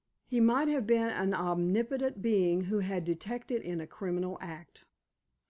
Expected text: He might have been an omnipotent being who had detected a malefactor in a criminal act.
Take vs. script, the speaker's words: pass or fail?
fail